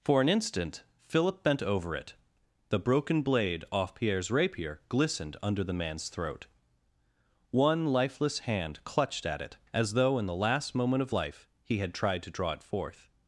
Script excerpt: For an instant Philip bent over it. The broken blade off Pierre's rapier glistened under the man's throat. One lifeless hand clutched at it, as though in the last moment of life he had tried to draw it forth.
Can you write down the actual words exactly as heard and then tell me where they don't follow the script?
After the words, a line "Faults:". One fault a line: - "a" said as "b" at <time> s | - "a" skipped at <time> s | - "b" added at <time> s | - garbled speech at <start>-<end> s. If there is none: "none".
For an instant Philip bent over it. The broken blade off Pierre's rapier glistened under the man's throat. One lifeless hand clutched at it, as though in the last moment of life he had tried to draw it forth.
Faults:
none